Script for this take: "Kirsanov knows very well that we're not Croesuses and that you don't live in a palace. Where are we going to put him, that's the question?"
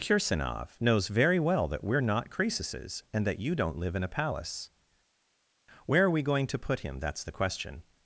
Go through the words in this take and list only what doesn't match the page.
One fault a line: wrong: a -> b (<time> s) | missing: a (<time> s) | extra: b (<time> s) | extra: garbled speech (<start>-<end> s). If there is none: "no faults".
no faults